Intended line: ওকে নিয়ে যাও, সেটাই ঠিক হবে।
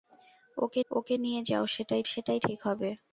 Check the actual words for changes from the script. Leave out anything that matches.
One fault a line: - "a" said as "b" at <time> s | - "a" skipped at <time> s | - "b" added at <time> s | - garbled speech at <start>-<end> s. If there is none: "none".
- "ওকে" added at 0.9 s
- "সেটাই" added at 2.0 s